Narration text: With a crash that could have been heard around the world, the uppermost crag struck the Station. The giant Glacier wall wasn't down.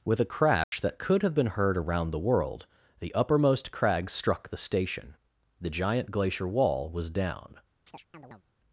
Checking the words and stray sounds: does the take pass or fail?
fail